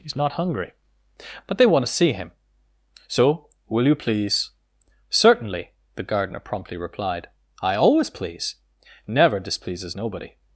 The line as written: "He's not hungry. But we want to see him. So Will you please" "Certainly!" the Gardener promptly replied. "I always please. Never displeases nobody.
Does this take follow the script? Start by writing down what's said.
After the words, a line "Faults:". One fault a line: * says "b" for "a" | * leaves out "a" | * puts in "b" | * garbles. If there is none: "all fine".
"He's not hungry. But they want to see him. So Will you please" "Certainly!" the Gardener promptly replied. "I always please. Never displeases nobody.
Faults:
* says "they" for "we"